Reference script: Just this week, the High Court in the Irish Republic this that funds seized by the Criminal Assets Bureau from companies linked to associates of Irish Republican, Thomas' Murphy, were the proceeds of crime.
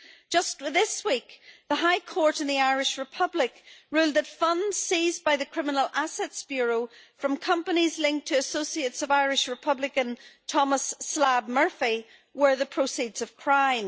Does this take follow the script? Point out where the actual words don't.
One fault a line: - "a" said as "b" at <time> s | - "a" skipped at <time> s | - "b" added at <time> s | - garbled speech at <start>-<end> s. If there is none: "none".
- "this" said as "ruled" at 3.9 s
- "Slab" added at 11.0 s